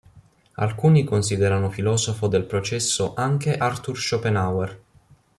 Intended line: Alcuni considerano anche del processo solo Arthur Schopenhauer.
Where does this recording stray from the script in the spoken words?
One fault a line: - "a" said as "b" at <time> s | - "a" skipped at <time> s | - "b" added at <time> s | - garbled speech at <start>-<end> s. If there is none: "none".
- "anche" said as "filosofo" at 1.7 s
- "solo" said as "anche" at 3.1 s